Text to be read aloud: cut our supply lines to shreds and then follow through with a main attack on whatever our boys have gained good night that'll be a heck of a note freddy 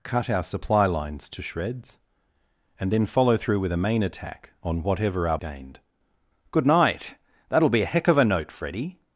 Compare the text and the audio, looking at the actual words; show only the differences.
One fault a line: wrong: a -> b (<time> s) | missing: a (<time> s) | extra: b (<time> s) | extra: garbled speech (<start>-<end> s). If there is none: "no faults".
missing: boys have (5.4 s)